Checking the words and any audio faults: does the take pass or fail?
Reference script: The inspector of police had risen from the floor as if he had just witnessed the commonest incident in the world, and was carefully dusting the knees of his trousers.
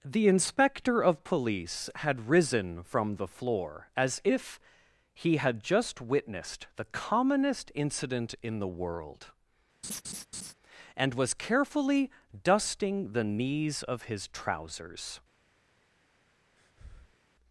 fail